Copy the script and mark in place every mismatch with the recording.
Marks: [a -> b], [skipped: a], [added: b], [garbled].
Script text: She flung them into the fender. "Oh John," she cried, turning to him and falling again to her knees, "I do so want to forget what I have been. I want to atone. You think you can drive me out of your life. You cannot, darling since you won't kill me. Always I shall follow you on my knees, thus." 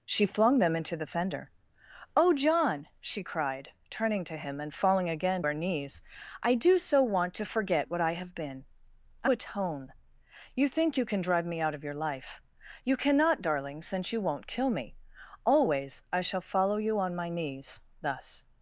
She flung them into the fender. "Oh John," she cried, turning to him and falling again [skipped: to] her knees, "I do so want to forget what I have been. I [skipped: want to] atone. You think you can drive me out of your life. You cannot, darling since you won't kill me. Always I shall follow you on my knees, thus."